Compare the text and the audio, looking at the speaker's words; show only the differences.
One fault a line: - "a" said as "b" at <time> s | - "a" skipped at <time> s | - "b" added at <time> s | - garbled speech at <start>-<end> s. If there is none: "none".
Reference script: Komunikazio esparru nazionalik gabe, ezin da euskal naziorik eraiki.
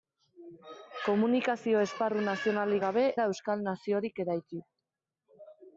- "ezin" skipped at 3.0 s